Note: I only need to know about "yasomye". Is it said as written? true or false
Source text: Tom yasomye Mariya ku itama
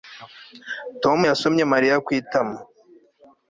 true